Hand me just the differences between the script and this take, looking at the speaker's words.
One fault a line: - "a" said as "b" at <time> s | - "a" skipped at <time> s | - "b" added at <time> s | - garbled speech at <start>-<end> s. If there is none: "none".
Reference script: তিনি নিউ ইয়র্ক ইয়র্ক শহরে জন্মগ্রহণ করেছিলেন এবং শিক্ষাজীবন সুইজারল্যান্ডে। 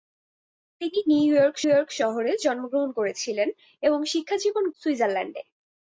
none